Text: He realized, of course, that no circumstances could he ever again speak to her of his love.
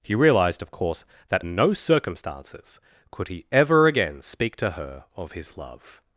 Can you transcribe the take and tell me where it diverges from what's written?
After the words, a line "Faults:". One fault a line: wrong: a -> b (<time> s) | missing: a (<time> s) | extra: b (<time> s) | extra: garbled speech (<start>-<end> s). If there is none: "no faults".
He realized, of course, that no circumstances could he ever again speak to her of his love.
Faults:
no faults